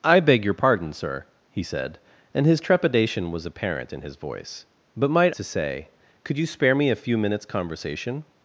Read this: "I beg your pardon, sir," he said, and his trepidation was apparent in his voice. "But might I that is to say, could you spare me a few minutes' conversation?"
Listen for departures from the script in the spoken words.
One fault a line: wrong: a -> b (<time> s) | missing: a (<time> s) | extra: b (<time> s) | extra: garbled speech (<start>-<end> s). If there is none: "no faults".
missing: I that is (5.3 s)